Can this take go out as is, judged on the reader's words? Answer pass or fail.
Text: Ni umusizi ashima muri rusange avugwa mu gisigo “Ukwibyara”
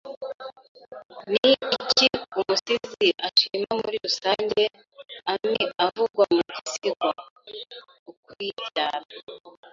fail